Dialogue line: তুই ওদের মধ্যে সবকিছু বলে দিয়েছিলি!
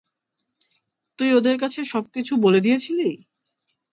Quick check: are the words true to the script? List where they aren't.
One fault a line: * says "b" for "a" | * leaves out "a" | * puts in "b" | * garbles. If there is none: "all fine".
* says "কাছে" for "মধ্যে"